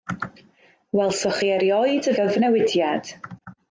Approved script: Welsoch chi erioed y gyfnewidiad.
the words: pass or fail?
pass